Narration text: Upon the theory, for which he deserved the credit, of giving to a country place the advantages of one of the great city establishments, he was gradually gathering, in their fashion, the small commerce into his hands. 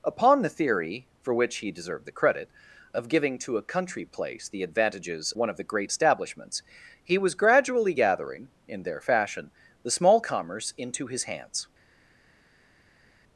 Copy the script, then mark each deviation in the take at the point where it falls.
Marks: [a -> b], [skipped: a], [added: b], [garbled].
Upon the theory, for which he deserved the credit, of giving to a country place the advantages [skipped: of] one of the great [skipped: city] establishments, he was gradually gathering, in their fashion, the small commerce into his hands.